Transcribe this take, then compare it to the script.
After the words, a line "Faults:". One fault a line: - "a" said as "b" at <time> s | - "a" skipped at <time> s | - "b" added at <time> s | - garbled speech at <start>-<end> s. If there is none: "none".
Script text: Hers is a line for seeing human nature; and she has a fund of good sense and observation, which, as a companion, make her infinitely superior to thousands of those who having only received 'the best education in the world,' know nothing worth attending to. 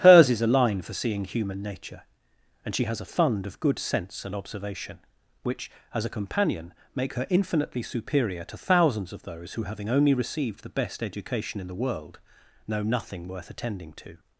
Hers is a line for seeing human nature; and she has a fund of good sense and observation, which, as a companion, make her infinitely superior to thousands of those who having only received 'the best education in the world,' know nothing worth attending to.
Faults:
none